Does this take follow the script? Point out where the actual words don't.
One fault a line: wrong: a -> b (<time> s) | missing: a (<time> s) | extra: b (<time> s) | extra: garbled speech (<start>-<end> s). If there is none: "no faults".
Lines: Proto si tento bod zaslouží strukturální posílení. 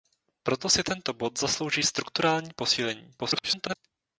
extra: garbled speech (3.2-3.7 s)